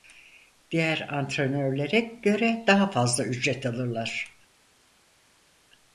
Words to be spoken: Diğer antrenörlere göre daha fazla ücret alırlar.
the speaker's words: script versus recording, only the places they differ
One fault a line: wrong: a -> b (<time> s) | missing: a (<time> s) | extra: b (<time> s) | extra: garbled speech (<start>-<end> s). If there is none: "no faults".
no faults